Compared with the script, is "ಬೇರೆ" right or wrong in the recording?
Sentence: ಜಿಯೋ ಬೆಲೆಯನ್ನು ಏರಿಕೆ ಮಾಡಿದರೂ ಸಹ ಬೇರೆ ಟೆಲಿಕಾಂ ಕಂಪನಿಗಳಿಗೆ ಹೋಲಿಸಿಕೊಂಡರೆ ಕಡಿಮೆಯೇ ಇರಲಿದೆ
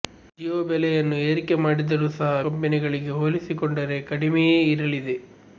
wrong